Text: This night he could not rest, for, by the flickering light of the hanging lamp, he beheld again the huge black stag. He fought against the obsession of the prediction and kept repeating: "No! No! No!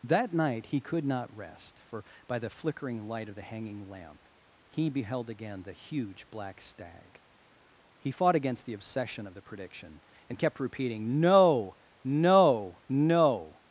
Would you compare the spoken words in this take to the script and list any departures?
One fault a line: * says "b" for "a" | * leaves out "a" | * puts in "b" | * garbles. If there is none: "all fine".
* says "That" for "This"